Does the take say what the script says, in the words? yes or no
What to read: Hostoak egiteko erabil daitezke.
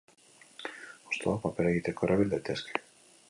no